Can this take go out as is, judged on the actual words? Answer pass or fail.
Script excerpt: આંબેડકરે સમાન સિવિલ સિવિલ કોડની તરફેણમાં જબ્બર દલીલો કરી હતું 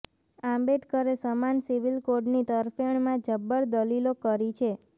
fail